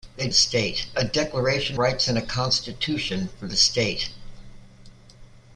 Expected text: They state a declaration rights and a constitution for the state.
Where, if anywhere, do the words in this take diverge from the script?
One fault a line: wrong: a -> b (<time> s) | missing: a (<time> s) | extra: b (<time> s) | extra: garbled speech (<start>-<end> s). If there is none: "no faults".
no faults